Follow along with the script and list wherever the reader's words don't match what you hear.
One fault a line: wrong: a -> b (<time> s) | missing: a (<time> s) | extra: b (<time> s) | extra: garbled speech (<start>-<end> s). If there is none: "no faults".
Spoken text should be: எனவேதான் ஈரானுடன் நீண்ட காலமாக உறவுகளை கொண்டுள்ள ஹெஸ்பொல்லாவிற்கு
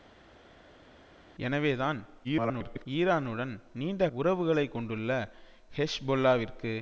extra: garbled speech (2.2-2.9 s)
missing: காலமாக (4.0 s)